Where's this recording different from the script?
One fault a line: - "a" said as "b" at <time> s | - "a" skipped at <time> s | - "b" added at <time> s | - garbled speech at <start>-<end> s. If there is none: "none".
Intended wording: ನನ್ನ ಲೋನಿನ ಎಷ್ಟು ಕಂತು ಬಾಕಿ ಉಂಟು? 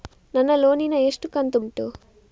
- "ಬಾಕಿ" skipped at 1.6 s